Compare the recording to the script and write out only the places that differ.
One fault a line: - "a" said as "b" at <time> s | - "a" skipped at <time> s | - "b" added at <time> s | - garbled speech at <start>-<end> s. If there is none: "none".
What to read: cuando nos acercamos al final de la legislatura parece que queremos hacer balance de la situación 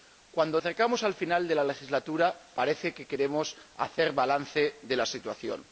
- "nos" skipped at 0.6 s